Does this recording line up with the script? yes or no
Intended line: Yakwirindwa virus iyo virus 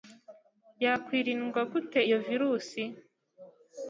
no